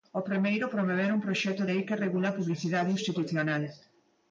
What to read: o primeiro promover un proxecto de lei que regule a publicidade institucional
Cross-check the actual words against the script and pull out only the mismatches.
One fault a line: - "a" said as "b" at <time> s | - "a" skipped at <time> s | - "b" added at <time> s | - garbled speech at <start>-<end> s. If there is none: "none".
- "de" skipped at 1.6 s